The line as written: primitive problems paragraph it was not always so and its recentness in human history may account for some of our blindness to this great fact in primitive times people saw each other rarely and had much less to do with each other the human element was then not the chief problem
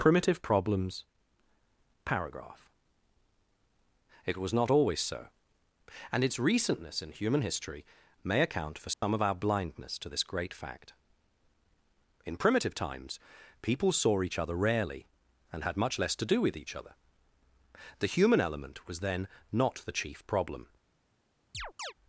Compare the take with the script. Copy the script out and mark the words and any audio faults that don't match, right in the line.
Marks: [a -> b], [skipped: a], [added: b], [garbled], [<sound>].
primitive problems paragraph it was not always so and its recentness in human history may account for some [dropout] of our blindness to this great fact in primitive times people saw each other rarely and had much less to do with each other the human element was then not the chief problem [chirp]